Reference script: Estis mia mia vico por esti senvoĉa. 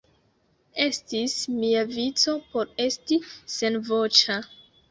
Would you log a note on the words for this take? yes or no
yes